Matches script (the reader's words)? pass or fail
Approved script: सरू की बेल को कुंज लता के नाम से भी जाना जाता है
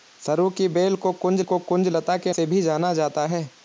fail